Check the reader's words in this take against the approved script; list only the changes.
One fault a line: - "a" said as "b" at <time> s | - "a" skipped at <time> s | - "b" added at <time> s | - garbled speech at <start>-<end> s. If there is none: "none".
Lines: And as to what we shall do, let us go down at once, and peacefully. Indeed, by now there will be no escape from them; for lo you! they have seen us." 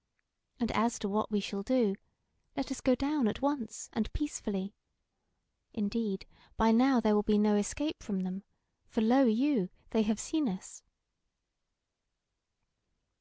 none